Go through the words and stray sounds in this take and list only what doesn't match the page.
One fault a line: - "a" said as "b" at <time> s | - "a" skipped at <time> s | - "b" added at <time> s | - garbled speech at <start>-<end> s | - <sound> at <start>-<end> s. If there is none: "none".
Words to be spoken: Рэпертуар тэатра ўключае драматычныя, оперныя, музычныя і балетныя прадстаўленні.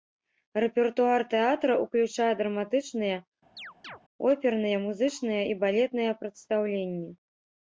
- chirp at 3.6-4.0 s